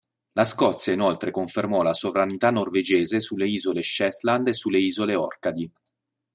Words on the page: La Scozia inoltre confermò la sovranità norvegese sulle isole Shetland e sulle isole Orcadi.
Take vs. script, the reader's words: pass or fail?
pass